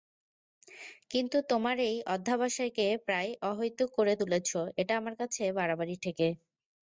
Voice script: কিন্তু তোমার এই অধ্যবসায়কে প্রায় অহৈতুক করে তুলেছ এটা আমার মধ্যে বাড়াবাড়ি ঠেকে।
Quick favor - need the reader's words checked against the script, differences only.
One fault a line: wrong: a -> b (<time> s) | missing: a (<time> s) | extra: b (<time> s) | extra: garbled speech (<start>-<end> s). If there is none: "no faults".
wrong: মধ্যে -> কাছে (5.2 s)